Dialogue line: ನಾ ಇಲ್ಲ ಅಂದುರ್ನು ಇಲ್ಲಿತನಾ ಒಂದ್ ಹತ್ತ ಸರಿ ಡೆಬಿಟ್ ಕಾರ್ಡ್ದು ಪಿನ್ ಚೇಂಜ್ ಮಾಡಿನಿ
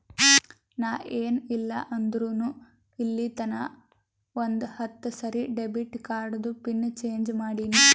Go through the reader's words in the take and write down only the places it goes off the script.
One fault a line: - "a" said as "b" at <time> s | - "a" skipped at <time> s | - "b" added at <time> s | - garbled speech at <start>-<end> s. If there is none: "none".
- "ಏನ್" added at 1.2 s